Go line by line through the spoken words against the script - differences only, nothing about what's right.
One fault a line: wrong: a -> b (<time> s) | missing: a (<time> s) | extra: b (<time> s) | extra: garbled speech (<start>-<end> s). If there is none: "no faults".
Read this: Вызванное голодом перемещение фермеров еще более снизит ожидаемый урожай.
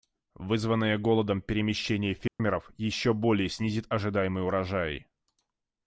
no faults